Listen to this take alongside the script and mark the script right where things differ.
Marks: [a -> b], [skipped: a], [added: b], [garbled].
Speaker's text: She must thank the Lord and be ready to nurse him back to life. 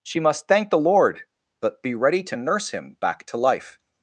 She must thank the Lord [and -> but] be ready to nurse him back to life.